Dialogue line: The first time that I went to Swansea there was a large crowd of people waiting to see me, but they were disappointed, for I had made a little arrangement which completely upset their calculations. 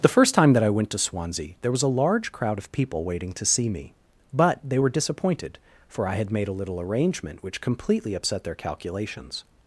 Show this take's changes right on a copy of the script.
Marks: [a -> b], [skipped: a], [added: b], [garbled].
The first time that I went to Swansea there was a large crowd of people waiting to see me, but they were disappointed, for I had made a little arrangement which completely upset their calculations.